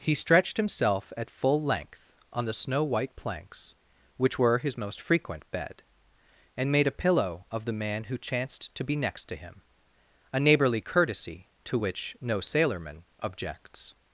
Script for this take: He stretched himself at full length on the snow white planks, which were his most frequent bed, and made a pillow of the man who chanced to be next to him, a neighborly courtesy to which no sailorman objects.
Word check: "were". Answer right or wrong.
right